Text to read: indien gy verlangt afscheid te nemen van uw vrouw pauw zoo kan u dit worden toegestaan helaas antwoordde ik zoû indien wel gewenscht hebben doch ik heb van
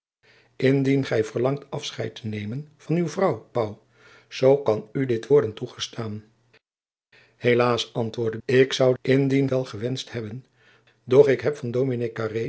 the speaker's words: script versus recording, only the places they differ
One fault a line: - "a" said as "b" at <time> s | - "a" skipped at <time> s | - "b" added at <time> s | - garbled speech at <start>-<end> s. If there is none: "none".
none